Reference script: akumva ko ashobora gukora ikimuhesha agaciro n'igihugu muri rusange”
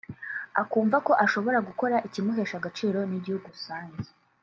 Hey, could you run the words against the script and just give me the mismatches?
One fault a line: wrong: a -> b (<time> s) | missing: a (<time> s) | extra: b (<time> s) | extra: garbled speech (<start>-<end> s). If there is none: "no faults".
missing: muri (3.5 s)